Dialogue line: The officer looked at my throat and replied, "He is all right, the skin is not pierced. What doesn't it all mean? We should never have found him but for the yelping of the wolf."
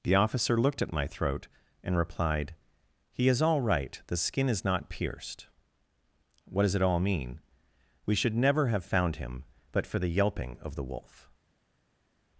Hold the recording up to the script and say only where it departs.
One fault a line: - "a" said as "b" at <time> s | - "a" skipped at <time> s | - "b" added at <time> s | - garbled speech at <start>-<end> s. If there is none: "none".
- "doesn't" said as "does" at 6.6 s